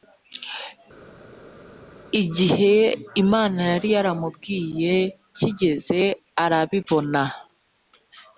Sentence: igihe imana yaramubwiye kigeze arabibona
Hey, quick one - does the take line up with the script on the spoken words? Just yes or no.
no